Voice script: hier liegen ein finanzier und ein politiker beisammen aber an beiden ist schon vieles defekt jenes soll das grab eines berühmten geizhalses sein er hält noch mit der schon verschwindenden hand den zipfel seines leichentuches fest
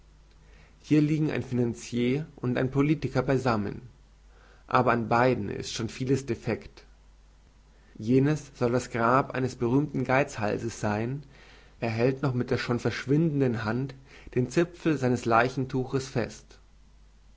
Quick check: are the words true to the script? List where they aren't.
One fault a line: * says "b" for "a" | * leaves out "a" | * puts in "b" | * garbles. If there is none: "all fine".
all fine